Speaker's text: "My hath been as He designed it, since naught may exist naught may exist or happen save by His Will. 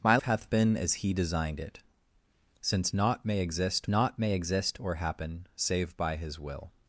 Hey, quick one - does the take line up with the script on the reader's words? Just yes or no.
yes